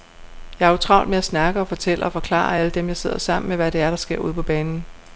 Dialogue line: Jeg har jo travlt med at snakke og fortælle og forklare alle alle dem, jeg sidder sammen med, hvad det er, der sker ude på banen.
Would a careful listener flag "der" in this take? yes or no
no